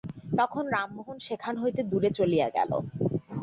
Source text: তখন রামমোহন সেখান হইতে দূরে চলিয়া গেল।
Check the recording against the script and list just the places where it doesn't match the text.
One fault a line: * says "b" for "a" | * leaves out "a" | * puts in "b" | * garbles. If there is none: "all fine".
all fine